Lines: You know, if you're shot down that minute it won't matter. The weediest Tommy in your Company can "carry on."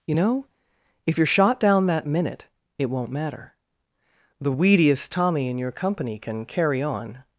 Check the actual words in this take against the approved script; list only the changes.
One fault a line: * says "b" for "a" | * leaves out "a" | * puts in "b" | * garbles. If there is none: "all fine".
all fine